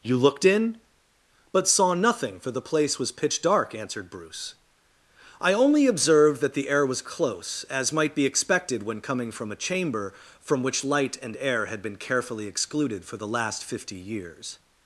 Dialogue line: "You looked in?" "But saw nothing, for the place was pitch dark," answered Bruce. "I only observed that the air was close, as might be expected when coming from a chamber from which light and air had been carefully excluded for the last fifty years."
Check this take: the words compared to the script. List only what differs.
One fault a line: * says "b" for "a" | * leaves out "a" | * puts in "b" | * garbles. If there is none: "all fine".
all fine